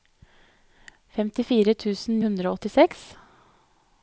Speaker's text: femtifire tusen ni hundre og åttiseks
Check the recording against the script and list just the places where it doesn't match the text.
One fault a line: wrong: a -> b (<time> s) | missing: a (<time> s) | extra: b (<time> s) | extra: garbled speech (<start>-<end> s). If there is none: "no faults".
missing: ni (2.2 s)